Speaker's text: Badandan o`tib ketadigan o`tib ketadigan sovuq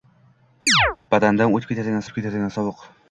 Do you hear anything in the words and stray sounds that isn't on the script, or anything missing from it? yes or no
yes